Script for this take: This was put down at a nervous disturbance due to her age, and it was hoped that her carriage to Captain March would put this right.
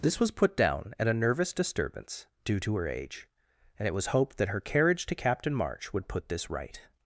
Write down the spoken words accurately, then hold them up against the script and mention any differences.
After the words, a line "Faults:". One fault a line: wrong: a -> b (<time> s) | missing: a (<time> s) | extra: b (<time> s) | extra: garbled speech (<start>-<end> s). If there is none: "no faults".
This was put down at a nervous disturbance due to her age, and it was hoped that her carriage to Captain March would put this right.
Faults:
no faults